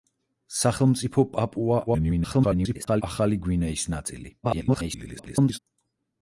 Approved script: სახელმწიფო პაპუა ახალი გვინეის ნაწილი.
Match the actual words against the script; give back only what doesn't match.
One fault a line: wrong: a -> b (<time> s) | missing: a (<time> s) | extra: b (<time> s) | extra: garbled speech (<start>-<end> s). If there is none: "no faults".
extra: garbled speech (1.9-3.0 s)
extra: garbled speech (4.4-5.6 s)